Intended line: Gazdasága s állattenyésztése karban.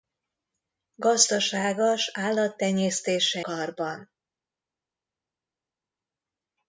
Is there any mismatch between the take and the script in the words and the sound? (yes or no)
no